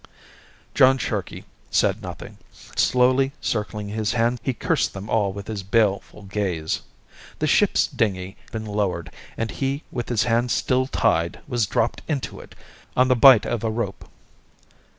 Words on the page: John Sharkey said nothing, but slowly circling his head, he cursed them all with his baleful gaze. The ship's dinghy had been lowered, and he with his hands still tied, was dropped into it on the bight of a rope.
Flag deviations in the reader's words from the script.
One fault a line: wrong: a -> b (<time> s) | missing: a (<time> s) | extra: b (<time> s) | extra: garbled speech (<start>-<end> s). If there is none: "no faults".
missing: but (2.4 s)
wrong: head -> hands (4.1 s)
missing: had (8.4 s)